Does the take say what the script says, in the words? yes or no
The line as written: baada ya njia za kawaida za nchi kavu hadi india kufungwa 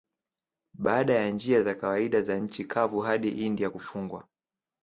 yes